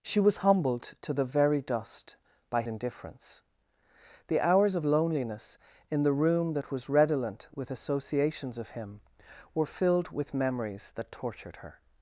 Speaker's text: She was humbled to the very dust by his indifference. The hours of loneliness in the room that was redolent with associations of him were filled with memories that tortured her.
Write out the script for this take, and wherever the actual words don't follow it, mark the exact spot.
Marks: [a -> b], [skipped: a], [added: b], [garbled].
She was humbled to the very dust by [skipped: his] indifference. The hours of loneliness in the room that was redolent with associations of him were filled with memories that tortured her.